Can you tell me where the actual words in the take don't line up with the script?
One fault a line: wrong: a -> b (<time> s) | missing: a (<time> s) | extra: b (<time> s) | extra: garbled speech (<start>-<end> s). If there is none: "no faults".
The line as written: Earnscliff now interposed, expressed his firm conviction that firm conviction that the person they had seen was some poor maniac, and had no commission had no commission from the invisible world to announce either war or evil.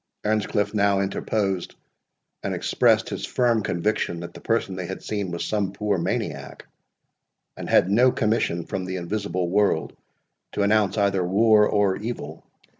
extra: and (2.4 s)
missing: firm conviction that (4.3 s)
missing: had no commission (8.7 s)